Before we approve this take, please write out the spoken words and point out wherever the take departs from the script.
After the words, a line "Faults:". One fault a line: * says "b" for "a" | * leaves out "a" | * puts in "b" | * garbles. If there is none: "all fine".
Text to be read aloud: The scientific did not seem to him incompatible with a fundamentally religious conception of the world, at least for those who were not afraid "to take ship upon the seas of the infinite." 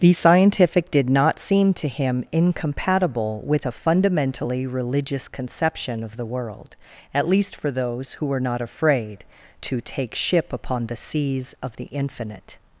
The scientific did not seem to him incompatible with a fundamentally religious conception of the world, at least for those who were not afraid "to take ship upon the seas of the infinite."
Faults:
all fine